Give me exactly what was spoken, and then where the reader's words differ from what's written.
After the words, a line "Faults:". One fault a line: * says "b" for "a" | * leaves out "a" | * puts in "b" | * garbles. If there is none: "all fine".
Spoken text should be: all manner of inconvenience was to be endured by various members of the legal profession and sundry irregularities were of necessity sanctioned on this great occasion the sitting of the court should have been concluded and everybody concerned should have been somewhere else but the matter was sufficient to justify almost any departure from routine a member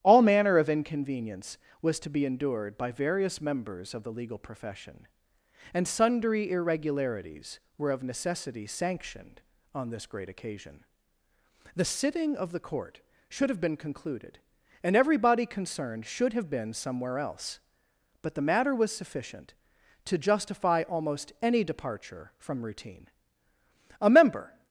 all manner of inconvenience was to be endured by various members of the legal profession and sundry irregularities were of necessity sanctioned on this great occasion the sitting of the court should have been concluded and everybody concerned should have been somewhere else but the matter was sufficient to justify almost any departure from routine a member
Faults:
all fine